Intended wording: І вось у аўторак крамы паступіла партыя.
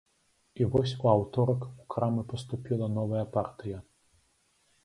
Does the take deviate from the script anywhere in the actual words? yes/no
yes